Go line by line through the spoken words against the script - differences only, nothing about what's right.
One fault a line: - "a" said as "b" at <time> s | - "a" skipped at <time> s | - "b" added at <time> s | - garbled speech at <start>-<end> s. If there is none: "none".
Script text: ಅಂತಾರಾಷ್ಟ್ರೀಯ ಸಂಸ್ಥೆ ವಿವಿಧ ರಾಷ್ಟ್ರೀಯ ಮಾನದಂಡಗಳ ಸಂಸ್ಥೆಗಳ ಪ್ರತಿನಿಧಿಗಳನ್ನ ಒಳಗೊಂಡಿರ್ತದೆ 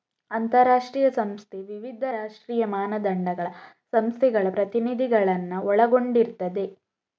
none